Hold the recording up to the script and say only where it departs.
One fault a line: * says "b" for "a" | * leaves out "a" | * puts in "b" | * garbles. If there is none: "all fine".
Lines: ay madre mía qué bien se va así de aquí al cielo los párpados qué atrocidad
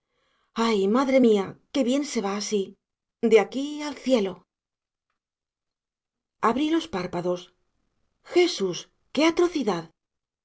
* puts in "abrí"
* puts in "jesús"